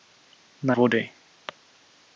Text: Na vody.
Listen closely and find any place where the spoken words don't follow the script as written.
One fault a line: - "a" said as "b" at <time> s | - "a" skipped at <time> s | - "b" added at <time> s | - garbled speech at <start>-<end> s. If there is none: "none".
none